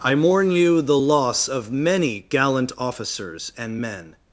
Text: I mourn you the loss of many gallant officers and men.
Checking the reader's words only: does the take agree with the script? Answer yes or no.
yes